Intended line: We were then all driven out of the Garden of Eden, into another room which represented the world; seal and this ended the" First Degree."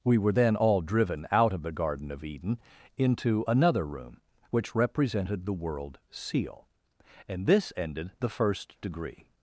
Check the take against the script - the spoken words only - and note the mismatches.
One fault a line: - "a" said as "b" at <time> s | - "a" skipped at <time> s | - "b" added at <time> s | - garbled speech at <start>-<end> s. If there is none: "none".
none